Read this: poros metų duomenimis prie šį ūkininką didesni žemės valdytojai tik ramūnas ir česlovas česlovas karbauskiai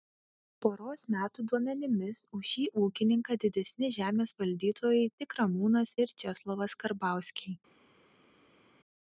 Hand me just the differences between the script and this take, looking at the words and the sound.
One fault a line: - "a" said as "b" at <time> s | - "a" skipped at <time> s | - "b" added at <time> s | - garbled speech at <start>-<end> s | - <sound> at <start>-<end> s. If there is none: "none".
- "prie" said as "už" at 2.4 s
- "česlovas" skipped at 6.8 s